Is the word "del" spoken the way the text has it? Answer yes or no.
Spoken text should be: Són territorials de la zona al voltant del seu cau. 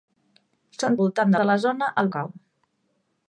no